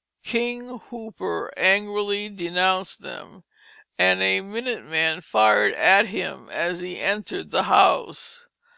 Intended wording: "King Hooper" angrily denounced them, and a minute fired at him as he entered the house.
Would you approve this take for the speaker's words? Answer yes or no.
no